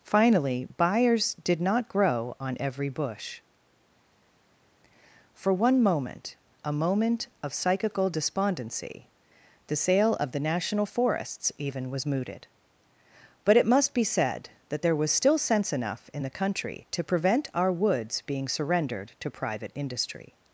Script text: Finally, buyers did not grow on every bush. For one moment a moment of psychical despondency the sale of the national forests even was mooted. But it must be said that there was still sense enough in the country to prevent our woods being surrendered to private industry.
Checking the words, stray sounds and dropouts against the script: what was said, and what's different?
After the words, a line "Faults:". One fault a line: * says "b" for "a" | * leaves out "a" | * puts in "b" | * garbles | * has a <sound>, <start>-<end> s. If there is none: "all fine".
Finally, buyers did not grow on every bush. For one moment a moment of psychical despondency the sale of the national forests even was mooted. But it must be said that there was still sense enough in the country to prevent our woods being surrendered to private industry.
Faults:
all fine